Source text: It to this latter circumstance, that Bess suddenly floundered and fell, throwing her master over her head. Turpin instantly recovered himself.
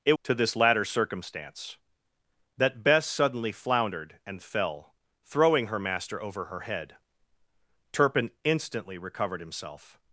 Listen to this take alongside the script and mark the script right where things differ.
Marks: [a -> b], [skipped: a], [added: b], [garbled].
It to this latter circumstance, that Bess suddenly floundered and fell, throwing her master over her head. Turpin instantly recovered himself.